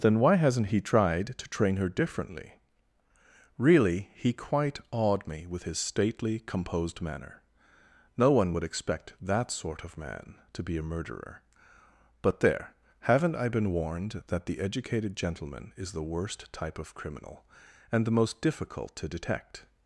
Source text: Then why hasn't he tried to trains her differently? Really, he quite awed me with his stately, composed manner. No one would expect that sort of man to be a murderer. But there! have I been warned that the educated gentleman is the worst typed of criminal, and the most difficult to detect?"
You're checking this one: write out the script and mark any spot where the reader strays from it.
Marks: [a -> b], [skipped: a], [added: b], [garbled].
Then why hasn't he tried to [trains -> train] her differently? Really, he quite awed me with his stately, composed manner. No one would expect that sort of man to be a murderer. But there! [have -> haven't] I been warned that the educated gentleman is the worst [typed -> type] of criminal, and the most difficult to detect?"